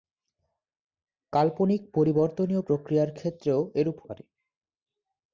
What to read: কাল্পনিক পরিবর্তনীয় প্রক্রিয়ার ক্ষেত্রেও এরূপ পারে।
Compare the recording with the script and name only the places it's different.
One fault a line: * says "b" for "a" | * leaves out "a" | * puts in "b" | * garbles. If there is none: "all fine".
all fine